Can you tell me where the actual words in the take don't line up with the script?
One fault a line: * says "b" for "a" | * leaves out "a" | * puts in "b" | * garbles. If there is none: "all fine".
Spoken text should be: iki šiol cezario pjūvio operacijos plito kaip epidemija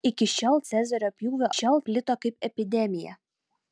* says "šiol" for "operacijos"